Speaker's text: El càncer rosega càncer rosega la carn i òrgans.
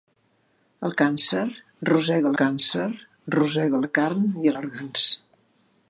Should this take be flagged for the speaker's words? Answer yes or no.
no